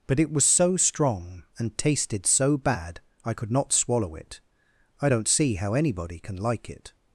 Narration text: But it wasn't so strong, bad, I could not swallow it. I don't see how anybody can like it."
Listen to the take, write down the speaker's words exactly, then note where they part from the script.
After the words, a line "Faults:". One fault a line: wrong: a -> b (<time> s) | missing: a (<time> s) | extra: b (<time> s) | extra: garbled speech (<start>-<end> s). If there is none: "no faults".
But it was so strong, and tasted so bad, I could not swallow it. I don't see how anybody can like it."
Faults:
wrong: wasn't -> was (0.3 s)
extra: and tasted so (1.6 s)